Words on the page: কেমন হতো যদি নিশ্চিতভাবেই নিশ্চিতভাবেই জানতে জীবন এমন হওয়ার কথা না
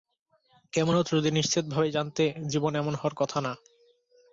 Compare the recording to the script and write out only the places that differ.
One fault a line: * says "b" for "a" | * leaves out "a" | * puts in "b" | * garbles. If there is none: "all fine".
* leaves out "নিশ্চিতভাবেই"